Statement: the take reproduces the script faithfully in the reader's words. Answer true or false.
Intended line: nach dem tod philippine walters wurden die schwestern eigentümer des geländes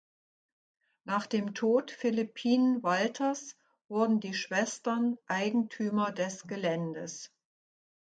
true